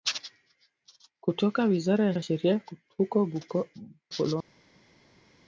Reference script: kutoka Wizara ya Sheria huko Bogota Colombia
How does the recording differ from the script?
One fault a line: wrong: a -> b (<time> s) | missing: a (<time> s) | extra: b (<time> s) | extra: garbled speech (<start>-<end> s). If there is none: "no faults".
extra: ya (2.1 s)
missing: Bogota (3.2 s)